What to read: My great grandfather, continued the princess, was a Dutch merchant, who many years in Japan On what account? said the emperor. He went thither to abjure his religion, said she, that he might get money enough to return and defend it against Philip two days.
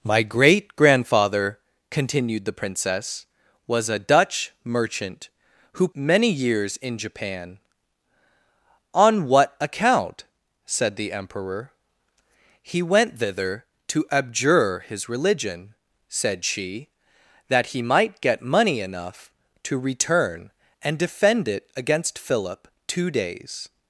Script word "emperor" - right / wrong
right